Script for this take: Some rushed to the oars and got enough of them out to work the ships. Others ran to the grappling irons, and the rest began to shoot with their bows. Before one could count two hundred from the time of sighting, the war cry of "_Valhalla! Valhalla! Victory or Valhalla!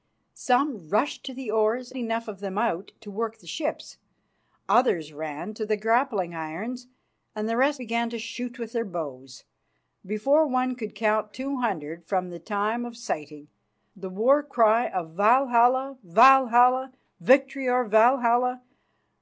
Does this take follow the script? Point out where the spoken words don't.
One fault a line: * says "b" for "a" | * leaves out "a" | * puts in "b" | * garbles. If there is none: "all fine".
* leaves out "and got"